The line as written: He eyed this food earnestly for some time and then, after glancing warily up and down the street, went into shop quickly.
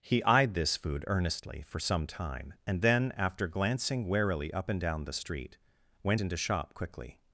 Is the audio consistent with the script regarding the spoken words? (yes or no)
yes